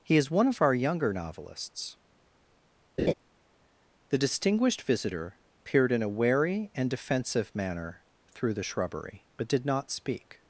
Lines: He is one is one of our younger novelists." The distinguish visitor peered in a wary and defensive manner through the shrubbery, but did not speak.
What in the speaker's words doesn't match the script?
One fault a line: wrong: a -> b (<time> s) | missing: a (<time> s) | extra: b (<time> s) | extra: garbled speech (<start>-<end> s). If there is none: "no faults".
missing: is one (0.5 s)
wrong: distinguish -> distinguished (4.2 s)